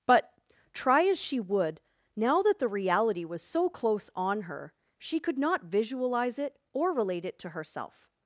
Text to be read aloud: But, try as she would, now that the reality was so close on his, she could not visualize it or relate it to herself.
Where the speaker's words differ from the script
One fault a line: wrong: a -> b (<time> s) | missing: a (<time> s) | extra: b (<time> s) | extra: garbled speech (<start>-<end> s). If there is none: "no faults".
wrong: his -> her (4.4 s)